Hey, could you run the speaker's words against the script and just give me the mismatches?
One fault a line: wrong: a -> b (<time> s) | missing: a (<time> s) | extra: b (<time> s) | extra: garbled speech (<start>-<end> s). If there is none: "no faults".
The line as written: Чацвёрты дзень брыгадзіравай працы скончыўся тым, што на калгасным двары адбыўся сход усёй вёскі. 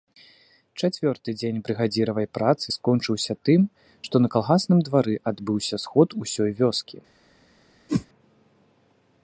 no faults